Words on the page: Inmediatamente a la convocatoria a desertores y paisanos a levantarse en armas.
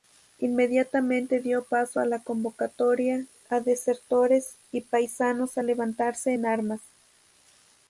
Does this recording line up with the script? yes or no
no